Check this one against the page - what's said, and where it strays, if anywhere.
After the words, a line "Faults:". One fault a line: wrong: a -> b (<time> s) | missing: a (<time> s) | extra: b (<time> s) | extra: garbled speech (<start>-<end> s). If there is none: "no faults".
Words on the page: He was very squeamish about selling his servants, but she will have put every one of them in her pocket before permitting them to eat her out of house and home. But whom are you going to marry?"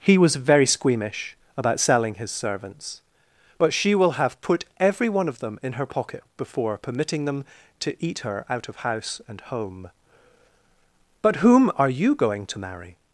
He was very squeamish about selling his servants, but she will have put every one of them in her pocket before permitting them to eat her out of house and home. But whom are you going to marry?"
Faults:
no faults